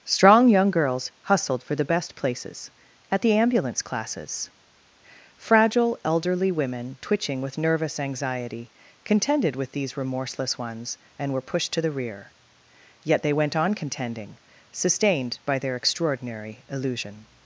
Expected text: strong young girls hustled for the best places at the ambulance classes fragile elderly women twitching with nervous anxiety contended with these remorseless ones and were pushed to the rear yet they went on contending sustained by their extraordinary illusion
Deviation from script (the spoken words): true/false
false